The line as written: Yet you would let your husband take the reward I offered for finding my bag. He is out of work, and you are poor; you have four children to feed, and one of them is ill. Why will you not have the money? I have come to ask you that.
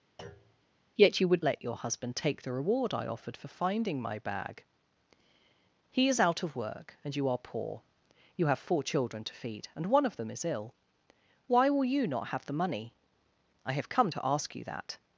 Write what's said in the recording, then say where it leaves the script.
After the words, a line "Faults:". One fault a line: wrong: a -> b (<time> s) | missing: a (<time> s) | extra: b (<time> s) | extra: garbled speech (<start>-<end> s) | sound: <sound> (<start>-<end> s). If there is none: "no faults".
Yet you would let your husband take the reward I offered for finding my bag. He is out of work, and you are poor; you have four children to feed, and one of them is ill. Why will you not have the money? I have come to ask you that.
Faults:
sound: thud (0.2-0.7 s)